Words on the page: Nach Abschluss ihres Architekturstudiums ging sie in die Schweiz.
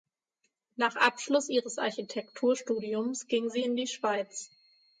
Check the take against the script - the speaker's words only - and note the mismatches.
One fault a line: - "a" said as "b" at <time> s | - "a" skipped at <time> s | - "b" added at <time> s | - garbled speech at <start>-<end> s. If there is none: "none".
none